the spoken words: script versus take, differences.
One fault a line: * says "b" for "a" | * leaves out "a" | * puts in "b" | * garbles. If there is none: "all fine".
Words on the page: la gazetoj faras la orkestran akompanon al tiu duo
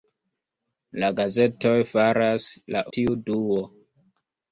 * leaves out "orkestran akompanon al"